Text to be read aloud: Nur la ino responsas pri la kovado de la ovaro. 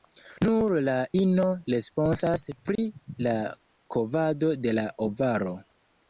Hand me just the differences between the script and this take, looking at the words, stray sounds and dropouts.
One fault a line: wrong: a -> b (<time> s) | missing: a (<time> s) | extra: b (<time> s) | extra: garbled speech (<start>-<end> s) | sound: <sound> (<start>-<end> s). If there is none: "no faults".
sound: dropout (2.8-2.8 s)